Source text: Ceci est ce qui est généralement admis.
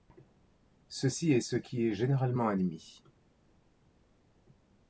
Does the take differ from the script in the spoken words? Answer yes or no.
no